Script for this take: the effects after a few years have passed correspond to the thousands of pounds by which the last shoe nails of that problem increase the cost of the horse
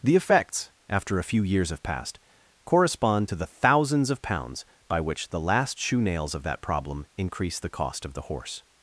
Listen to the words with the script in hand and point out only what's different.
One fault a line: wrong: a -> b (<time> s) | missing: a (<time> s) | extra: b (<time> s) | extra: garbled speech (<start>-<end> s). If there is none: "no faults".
no faults